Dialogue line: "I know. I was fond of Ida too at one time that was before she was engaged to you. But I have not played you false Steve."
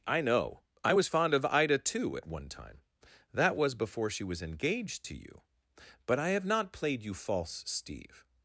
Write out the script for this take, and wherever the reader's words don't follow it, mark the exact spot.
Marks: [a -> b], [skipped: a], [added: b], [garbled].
"I know. I was fond of Ida too at one time that was before she was engaged to you. But I have not played you false Steve."